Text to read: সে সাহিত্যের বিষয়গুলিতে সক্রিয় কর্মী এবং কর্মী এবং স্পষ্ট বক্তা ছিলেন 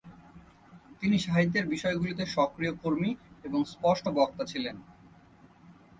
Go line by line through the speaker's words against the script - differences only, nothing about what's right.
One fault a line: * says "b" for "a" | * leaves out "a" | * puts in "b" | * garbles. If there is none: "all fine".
* says "তিনি" for "সে"
* leaves out "কর্মী এবং"